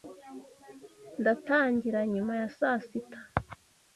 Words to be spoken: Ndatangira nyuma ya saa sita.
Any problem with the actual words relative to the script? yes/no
no